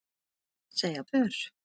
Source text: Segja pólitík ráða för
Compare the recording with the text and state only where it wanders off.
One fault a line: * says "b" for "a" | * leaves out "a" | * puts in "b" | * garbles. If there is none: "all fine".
* leaves out "pólitík ráða"